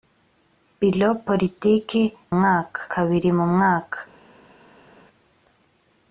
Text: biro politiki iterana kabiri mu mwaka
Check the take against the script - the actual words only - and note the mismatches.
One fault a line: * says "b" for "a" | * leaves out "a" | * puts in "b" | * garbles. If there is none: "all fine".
* says "mwaka" for "iterana"